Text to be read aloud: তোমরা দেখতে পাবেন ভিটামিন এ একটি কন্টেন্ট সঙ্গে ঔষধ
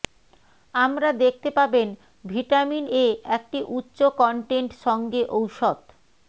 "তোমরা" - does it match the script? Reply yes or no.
no